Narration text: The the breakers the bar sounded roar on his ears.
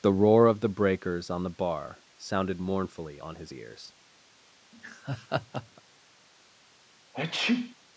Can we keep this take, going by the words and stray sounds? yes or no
no